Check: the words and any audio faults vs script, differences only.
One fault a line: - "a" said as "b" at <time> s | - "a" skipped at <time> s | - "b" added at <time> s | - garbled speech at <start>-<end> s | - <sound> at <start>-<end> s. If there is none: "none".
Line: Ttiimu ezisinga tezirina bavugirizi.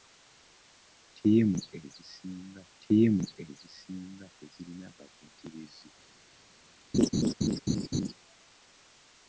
- "ttiimu ezisinga" added at 2.7 s
- laugh at 6.9-8.1 s